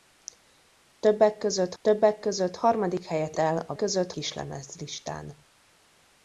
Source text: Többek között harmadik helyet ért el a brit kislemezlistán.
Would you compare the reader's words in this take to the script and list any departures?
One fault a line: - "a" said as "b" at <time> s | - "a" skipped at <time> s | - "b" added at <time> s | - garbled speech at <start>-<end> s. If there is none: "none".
- "többek között" added at 1.8 s
- "ért" skipped at 3.4 s
- "brit" said as "között" at 3.7 s